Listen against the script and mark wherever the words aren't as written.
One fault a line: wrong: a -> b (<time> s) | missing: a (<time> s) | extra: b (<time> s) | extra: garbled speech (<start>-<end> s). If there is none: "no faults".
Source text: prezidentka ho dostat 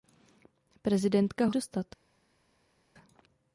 no faults